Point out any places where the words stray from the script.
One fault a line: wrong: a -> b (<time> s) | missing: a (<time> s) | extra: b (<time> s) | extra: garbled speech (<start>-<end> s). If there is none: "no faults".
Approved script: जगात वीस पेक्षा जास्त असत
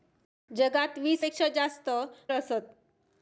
no faults